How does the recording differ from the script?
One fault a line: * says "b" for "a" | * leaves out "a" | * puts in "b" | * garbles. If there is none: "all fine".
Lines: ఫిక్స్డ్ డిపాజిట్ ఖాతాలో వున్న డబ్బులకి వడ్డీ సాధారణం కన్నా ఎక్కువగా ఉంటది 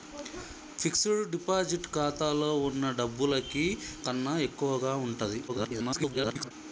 * leaves out "వడ్డీ సాధారణం"
* garbles